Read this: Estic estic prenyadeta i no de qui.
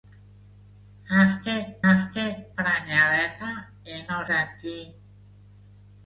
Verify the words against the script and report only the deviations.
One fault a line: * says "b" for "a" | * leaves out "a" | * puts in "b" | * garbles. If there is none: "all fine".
all fine